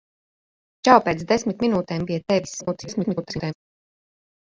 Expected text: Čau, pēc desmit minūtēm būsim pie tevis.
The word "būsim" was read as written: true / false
false